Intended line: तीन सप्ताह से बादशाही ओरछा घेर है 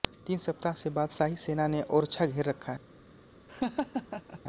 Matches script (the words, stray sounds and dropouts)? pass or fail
fail